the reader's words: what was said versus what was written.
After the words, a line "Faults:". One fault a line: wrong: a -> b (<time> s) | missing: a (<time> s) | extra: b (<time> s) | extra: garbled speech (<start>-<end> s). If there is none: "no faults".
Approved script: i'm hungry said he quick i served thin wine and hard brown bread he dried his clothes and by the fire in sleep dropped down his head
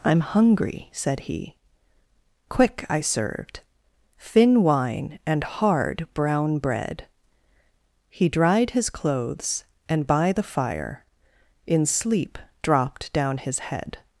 i'm hungry said he quick i served thin wine and hard brown bread he dried his clothes and by the fire in sleep dropped down his head
Faults:
no faults